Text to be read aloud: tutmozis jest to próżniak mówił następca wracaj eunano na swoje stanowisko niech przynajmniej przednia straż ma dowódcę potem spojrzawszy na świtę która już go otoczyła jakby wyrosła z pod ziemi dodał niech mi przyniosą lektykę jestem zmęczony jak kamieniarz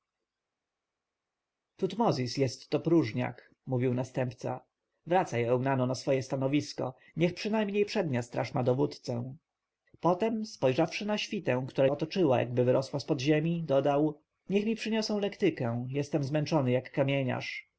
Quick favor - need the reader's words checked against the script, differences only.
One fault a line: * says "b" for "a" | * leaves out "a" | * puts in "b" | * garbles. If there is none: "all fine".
* leaves out "już go"